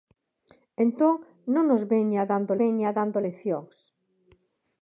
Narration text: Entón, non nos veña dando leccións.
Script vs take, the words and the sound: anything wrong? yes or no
yes